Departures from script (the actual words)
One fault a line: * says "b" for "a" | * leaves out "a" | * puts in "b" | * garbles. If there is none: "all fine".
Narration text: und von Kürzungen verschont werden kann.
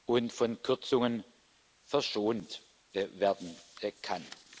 all fine